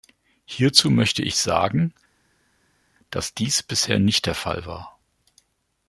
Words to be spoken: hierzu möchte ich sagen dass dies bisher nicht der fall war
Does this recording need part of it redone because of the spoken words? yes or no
no